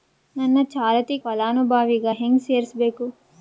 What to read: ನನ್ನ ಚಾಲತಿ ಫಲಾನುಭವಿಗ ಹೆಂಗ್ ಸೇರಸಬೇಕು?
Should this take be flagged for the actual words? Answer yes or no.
no